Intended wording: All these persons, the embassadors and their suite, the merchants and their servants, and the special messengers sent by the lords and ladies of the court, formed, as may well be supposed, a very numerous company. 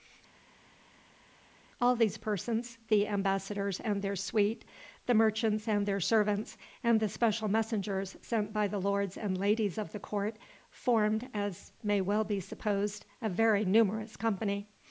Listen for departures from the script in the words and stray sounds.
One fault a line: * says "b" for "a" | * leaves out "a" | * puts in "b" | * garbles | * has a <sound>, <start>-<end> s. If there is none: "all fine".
all fine